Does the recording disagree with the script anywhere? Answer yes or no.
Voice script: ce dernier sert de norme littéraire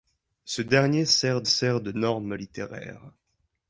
yes